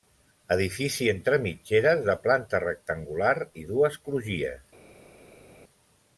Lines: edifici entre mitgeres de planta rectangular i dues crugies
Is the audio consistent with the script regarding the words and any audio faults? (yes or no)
yes